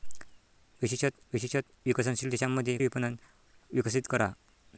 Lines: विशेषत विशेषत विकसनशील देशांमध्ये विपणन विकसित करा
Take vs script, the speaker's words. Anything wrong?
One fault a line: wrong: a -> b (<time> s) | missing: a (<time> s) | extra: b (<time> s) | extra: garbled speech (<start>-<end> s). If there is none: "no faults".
no faults